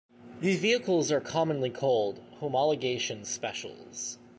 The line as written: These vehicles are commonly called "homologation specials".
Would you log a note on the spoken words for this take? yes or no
no